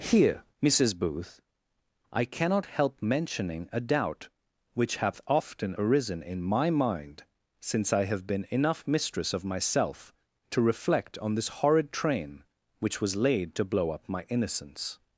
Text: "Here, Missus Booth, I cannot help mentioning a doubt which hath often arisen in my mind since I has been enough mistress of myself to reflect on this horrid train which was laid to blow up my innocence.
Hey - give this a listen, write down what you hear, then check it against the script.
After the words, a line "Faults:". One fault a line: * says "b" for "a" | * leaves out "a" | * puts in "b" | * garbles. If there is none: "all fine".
"Here, Missus Booth, I cannot help mentioning a doubt which hath often arisen in my mind since I have been enough mistress of myself to reflect on this horrid train which was laid to blow up my innocence.
Faults:
* says "have" for "has"